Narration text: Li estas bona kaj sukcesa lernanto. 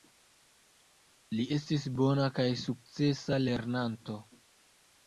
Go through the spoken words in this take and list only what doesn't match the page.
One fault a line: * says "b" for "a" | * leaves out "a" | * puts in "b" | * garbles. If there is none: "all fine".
* says "estis" for "estas"